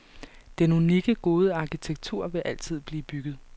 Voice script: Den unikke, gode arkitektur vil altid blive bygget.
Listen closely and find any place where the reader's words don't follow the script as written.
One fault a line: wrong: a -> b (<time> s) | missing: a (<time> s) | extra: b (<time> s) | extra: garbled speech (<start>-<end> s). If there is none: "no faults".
no faults